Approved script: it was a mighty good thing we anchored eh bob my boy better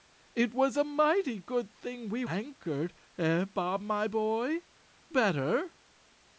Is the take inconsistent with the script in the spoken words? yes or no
no